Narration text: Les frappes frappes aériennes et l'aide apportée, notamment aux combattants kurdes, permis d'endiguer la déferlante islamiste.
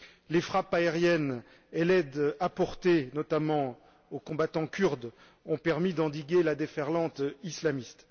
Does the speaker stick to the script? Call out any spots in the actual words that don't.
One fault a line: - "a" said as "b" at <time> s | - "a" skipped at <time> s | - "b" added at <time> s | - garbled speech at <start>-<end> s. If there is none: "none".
- "frappes" skipped at 0.7 s
- "ont" added at 5.4 s